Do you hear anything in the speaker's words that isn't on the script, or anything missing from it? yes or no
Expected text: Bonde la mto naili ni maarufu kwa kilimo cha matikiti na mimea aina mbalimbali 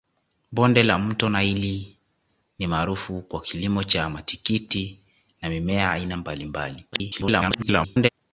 yes